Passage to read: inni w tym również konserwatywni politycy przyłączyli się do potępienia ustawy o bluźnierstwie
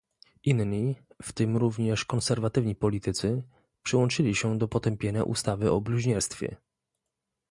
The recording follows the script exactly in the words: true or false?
true